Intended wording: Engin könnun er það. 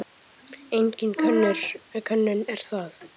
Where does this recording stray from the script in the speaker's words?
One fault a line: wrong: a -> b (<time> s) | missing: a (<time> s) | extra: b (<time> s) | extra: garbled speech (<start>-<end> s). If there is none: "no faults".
no faults